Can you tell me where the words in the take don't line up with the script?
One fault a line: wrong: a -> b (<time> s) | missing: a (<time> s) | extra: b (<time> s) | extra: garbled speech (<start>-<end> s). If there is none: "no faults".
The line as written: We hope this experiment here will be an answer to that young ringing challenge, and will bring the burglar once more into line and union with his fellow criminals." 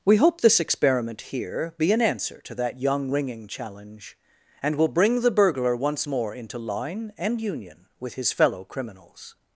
missing: will (1.8 s)